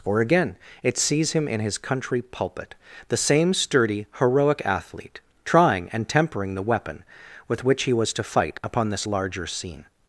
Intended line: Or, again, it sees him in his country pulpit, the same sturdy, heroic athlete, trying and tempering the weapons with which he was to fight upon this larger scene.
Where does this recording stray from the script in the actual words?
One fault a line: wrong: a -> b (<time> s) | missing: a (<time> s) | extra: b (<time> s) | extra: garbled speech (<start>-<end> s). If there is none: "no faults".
wrong: weapons -> weapon (6.6 s)